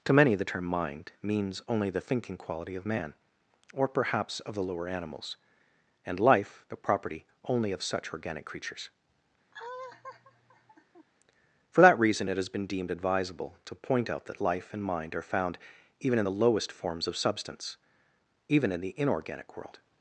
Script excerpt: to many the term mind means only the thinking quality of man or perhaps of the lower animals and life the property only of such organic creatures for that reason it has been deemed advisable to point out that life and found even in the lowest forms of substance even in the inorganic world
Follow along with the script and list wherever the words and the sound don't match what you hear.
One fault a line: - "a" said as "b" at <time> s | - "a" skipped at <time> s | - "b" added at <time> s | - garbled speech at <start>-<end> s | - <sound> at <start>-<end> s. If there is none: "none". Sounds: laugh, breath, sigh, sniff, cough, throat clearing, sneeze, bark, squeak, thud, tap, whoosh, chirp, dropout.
- laugh at 9.5-11.1 s
- "mind are" added at 14.8 s